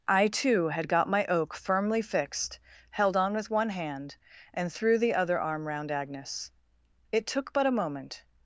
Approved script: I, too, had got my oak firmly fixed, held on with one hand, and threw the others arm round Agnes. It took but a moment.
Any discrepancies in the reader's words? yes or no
yes